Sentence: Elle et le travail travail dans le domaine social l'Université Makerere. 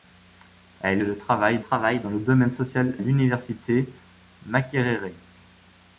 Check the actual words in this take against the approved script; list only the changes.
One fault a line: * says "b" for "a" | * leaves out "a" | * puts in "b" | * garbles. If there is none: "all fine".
all fine